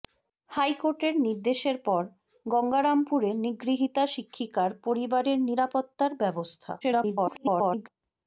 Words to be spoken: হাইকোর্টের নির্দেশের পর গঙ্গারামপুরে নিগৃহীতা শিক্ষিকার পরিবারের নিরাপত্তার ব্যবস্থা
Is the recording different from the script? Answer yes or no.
yes